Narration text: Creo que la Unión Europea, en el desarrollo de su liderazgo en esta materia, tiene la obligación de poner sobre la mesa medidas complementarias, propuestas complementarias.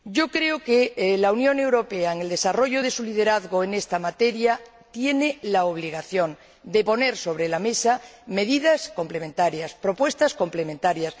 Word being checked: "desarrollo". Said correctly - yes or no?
yes